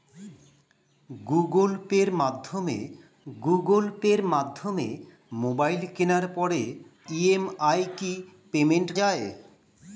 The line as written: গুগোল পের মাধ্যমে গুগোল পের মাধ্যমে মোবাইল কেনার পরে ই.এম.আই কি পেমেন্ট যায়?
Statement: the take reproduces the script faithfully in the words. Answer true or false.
true